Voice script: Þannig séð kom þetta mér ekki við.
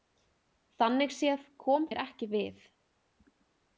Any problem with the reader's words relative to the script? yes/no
yes